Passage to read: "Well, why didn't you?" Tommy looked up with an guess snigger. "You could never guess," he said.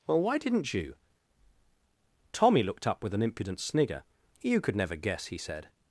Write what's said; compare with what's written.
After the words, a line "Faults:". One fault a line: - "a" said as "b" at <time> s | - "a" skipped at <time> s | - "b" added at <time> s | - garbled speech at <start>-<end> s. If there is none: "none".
"Well, why didn't you?" Tommy looked up with an impudent snigger. "You could never guess," he said.
Faults:
- "guess" said as "impudent" at 3.2 s